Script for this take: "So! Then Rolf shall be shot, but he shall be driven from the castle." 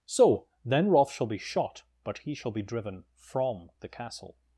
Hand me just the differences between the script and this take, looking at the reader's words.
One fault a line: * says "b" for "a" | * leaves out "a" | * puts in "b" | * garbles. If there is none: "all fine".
all fine